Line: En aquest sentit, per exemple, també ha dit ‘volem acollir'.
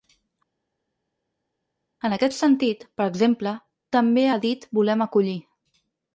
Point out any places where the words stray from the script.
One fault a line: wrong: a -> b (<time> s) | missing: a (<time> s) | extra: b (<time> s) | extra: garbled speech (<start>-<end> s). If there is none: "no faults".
no faults